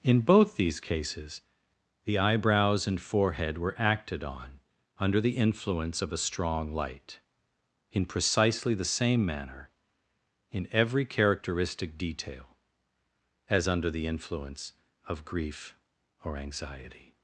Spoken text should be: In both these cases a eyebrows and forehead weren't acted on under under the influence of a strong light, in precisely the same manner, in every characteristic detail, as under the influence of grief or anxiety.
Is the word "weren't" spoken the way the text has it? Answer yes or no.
no